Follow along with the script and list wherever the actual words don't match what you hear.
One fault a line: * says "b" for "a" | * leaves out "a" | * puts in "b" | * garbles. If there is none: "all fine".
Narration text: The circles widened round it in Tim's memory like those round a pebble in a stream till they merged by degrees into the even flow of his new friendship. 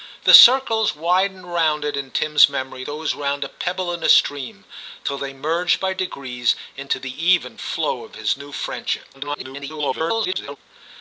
* leaves out "like"
* garbles